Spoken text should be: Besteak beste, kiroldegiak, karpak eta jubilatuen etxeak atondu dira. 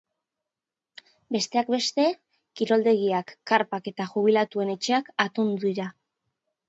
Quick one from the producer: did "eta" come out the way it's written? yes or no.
yes